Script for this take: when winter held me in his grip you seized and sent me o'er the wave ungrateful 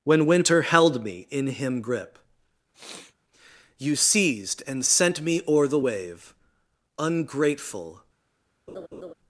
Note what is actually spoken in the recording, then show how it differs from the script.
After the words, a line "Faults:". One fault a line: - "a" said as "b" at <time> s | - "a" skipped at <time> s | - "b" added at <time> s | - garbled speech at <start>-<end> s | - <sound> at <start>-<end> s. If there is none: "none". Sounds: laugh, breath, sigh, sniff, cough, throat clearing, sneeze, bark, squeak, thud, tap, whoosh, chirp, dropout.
when winter held me in him grip you seized and sent me o'er the wave ungrateful
Faults:
- "his" said as "him" at 1.4 s
- sniff at 2.7-3.2 s
- laugh at 8.7-9.1 s